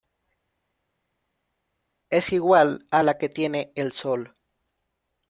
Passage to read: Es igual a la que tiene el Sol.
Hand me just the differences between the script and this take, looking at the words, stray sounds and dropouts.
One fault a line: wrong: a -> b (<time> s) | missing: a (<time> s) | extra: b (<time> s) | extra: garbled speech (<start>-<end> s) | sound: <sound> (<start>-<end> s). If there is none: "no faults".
no faults